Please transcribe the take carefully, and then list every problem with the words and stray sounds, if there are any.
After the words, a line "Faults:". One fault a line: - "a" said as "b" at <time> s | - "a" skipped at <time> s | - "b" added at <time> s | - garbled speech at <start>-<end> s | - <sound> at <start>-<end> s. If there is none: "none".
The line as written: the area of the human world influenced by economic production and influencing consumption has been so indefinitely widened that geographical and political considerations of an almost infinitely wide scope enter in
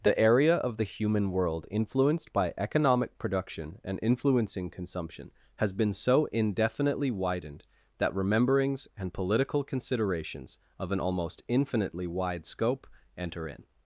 the area of the human world influenced by economic production and influencing consumption has been so indefinitely widened that rememberings and political considerations of an almost infinitely wide scope enter in
Faults:
- "geographical" said as "rememberings" at 8.2 s